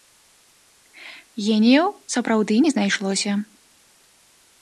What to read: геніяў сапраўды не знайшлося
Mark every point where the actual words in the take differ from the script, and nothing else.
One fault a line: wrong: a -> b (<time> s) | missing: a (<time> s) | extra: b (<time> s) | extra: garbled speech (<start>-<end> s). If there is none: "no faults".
no faults